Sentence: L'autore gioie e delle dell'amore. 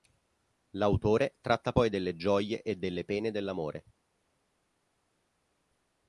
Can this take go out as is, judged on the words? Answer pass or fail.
fail